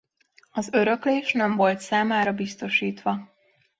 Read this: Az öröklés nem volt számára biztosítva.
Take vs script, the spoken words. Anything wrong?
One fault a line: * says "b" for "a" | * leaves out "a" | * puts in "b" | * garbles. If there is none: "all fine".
all fine